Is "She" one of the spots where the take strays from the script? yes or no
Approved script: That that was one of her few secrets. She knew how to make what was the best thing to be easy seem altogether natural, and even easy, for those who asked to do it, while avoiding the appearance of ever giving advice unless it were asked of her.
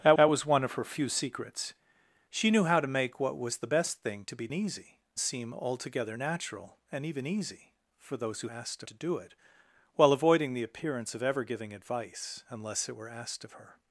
no